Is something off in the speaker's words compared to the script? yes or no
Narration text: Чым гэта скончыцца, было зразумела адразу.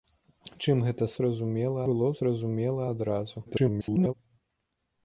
yes